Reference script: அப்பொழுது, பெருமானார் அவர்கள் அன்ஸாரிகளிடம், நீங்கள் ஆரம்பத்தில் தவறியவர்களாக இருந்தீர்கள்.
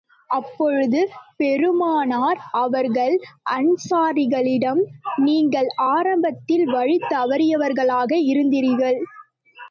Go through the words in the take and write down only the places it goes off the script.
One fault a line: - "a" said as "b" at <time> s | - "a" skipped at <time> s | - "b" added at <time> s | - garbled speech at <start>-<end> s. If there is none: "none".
- "வழி" added at 6.7 s